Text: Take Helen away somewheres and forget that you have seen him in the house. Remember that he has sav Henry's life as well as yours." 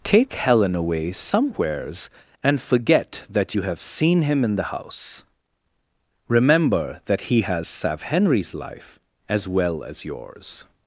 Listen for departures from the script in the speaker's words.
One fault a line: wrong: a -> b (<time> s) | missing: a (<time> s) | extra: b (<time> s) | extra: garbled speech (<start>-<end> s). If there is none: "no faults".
no faults